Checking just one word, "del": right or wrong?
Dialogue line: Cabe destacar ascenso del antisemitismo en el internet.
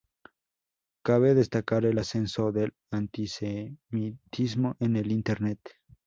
right